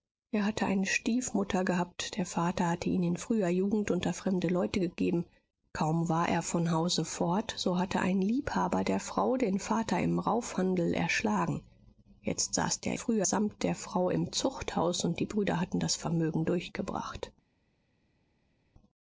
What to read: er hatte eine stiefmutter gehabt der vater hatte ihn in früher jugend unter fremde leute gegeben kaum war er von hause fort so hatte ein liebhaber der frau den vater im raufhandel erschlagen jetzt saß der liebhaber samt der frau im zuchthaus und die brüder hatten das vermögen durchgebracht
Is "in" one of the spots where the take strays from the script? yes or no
no